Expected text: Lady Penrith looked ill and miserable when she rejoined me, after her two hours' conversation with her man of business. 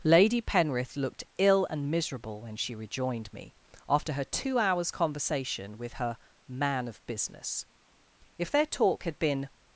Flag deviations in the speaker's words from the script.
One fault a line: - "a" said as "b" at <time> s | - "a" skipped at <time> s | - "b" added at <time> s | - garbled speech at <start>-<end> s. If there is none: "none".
- "If their talk had been" added at 8.4 s